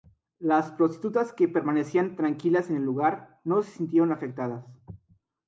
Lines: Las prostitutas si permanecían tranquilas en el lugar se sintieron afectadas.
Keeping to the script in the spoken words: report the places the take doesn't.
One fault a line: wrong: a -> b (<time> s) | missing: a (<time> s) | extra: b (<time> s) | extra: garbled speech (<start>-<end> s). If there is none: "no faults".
wrong: si -> que (1.3 s)
extra: no (3.4 s)